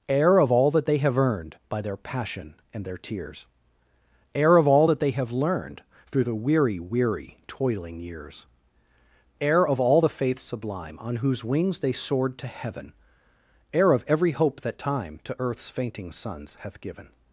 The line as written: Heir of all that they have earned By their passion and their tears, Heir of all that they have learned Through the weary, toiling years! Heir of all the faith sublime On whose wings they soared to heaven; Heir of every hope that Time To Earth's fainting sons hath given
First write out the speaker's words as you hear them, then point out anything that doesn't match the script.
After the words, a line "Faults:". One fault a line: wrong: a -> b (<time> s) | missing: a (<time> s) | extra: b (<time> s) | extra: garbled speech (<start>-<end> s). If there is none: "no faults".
Heir of all that they have earned By their passion and their tears, Heir of all that they have learned Through the weary weary, toiling years! Heir of all the faith sublime On whose wings they soared to heaven; Heir of every hope that Time To Earth's fainting sons hath given
Faults:
extra: weary (6.8 s)